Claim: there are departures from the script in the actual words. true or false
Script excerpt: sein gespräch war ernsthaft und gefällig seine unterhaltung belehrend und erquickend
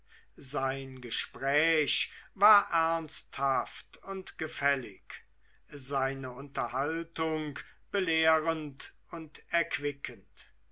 false